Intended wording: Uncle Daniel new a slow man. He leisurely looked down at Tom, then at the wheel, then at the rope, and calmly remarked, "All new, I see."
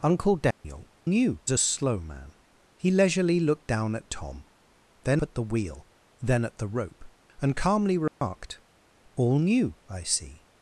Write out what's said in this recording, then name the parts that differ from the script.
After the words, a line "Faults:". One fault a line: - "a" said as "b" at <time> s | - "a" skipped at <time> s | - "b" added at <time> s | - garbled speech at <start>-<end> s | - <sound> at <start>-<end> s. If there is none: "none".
Uncle Daniel new a slow man. He leisurely looked down at Tom, then at the wheel, then at the rope, and calmly remarked, "All new, I see."
Faults:
- dropout at 0.5-0.6 s
- dropout at 8.1-8.2 s